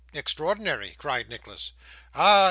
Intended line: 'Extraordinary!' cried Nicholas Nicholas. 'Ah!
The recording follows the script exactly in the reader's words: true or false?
false